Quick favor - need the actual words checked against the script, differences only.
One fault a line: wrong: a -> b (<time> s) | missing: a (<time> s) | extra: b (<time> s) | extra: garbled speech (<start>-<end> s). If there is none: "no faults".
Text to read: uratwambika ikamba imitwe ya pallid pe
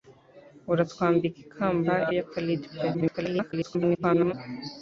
missing: imitwe (1.9 s)
extra: garbled speech (2.9-4.3 s)